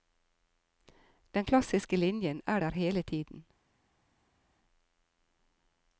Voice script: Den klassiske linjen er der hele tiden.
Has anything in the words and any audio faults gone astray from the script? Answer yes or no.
no